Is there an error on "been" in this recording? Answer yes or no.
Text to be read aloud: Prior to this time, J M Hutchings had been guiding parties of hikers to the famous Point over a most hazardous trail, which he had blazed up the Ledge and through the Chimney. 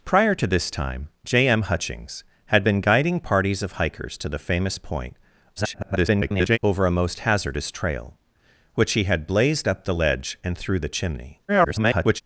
no